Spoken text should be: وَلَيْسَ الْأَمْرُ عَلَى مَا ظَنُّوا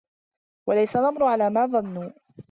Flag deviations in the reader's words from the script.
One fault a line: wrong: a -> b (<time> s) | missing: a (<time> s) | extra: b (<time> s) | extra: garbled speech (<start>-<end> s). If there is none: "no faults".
no faults